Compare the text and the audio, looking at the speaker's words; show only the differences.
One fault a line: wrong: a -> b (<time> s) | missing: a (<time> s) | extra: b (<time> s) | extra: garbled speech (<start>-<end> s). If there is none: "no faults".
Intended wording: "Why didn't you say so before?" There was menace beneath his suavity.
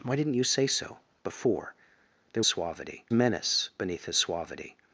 wrong: was -> suavity (2.5 s)